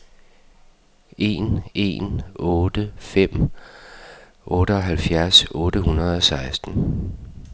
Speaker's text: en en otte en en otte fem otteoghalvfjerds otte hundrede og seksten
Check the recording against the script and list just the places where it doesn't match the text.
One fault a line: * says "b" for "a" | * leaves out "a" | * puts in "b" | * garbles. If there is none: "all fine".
* leaves out "en en otte"